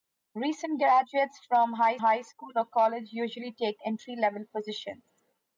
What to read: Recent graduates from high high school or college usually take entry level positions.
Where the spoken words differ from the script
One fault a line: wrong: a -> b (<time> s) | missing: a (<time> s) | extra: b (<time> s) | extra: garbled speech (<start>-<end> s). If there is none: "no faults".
no faults